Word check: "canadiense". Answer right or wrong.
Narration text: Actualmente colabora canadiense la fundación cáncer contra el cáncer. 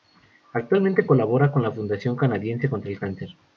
wrong